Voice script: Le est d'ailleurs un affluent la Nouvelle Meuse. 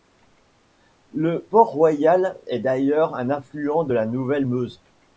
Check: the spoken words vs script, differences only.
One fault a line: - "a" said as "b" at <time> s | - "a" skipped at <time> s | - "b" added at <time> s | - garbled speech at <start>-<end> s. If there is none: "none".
- "port Royal" added at 1.4 s
- "de" added at 3.8 s